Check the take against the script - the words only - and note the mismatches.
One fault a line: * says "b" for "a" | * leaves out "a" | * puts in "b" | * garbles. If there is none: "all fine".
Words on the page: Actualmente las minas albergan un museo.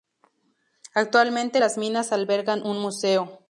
all fine